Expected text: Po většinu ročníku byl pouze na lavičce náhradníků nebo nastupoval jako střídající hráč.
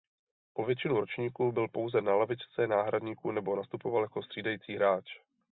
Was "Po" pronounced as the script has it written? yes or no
yes